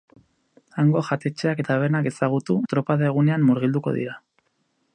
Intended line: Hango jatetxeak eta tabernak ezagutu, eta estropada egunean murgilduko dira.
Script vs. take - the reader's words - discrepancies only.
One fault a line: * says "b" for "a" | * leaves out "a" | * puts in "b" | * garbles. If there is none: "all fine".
* leaves out "eta"
* leaves out "eta"